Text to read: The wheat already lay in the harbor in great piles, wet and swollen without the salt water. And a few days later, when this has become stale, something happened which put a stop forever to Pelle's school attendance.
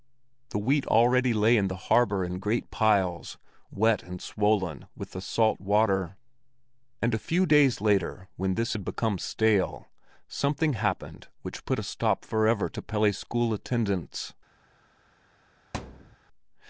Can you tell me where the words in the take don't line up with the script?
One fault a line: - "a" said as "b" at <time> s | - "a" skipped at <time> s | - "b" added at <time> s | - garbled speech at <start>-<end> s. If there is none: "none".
- "without" said as "with" at 5.0 s
- "has" said as "had" at 8.7 s